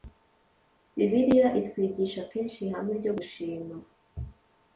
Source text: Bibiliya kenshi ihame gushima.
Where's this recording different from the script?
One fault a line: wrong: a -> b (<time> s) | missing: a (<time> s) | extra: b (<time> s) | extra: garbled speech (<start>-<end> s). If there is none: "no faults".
extra: itwigisha (1.6 s)
extra: ryo (3.0 s)